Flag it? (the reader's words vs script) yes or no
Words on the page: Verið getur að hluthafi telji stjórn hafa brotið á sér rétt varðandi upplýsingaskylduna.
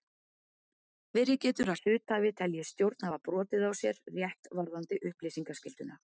no